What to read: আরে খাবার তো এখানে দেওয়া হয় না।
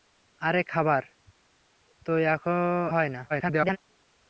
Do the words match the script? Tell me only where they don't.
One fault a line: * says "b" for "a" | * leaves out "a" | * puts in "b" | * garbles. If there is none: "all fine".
* leaves out "এখানে দেওয়া"
* garbles